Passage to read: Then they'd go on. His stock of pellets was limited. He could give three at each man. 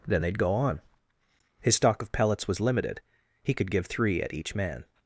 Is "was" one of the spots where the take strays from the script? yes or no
no